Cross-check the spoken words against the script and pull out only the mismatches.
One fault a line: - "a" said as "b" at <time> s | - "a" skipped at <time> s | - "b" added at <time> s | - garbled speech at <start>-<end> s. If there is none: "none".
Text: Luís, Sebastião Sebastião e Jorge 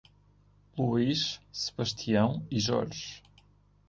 - "Sebastião" skipped at 2.4 s